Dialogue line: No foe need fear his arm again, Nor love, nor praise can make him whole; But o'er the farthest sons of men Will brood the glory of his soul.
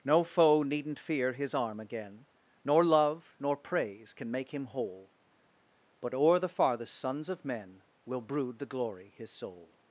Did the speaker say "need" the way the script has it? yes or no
no